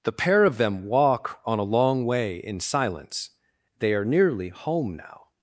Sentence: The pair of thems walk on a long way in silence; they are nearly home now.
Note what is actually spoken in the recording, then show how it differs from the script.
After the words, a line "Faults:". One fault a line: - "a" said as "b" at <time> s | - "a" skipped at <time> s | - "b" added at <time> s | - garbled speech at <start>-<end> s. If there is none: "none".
The pair of them walk on a long way in silence; they are nearly home now.
Faults:
- "thems" said as "them" at 0.6 s